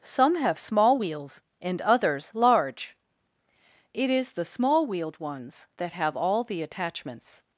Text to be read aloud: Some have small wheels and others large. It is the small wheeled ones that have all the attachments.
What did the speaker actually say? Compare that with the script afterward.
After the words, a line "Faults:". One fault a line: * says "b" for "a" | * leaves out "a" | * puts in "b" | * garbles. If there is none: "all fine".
Some have small wheels and others large. It is the small wheeled ones that have all the attachments.
Faults:
all fine